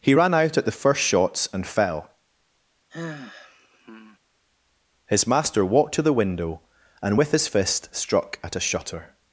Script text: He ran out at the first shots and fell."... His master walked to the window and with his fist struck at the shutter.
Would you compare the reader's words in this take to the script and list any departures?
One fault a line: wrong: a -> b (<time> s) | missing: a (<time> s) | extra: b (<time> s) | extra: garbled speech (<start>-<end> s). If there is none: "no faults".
wrong: the -> a (8.6 s)